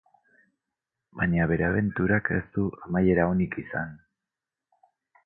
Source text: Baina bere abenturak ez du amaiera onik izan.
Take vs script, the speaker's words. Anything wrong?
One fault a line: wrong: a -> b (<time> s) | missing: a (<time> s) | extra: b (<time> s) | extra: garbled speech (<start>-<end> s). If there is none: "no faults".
no faults